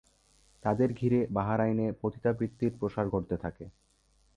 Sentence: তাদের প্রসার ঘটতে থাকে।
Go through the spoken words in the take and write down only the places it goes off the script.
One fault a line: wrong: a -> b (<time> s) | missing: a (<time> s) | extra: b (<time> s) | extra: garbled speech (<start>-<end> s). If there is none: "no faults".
extra: ঘিরে বাহরাইনে পতিতাবৃত্তির (0.9 s)